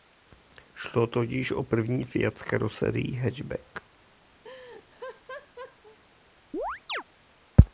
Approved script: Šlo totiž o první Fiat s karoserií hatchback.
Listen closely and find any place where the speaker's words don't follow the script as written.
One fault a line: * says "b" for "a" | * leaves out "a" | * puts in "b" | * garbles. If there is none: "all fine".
all fine